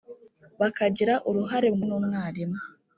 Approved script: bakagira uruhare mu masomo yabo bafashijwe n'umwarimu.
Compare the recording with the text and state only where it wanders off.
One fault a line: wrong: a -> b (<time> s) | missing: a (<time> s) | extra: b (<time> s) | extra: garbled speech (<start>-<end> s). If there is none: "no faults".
missing: masomo yabo bafashijwe (1.8 s)